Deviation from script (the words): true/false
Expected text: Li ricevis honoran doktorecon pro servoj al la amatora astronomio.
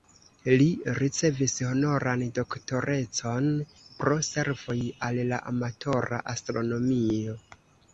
false